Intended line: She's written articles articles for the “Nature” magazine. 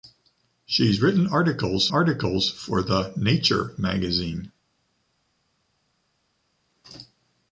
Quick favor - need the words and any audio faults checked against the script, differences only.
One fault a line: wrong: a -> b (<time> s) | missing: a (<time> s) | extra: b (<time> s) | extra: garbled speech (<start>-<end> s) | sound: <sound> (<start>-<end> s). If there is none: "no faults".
no faults